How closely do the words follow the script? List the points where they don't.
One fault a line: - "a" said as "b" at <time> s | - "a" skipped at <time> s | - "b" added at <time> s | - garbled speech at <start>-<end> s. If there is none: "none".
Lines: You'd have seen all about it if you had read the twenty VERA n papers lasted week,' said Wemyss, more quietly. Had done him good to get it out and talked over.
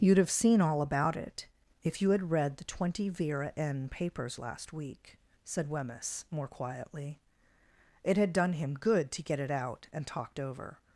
- "lasted" said as "last" at 4.4 s
- "It" added at 8.0 s